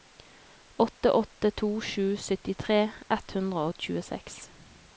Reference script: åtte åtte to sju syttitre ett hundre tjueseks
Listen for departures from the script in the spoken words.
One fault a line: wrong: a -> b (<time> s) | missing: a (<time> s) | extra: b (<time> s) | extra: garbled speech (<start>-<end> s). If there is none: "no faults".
extra: og (3.7 s)